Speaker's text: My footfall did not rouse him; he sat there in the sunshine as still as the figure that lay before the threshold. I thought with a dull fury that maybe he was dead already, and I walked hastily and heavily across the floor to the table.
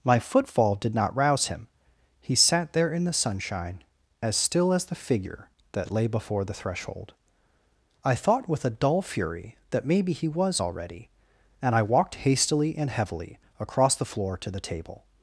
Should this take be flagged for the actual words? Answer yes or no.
yes